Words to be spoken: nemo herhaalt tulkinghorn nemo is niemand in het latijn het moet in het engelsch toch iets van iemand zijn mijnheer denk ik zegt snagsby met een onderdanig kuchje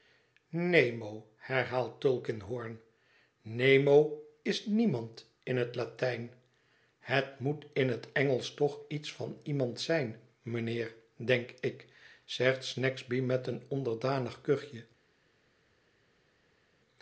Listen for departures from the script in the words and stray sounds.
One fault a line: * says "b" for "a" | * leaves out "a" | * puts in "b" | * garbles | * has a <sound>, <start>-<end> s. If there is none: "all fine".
all fine